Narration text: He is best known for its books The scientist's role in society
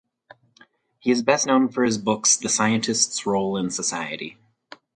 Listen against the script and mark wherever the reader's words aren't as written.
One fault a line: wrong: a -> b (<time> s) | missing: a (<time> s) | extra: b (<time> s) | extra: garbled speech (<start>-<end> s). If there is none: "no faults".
wrong: its -> his (1.8 s)